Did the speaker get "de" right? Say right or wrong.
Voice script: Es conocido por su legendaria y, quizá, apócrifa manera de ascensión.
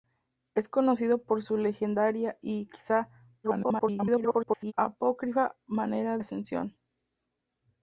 wrong